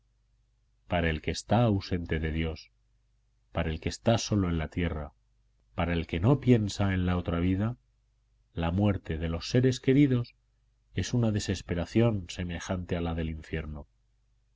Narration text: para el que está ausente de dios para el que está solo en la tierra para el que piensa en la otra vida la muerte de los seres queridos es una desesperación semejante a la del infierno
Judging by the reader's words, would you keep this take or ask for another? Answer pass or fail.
fail